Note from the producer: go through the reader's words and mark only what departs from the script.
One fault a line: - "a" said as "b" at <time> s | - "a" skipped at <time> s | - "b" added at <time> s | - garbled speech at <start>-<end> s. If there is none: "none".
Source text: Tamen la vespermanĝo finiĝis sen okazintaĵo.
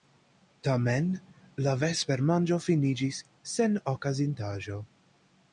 none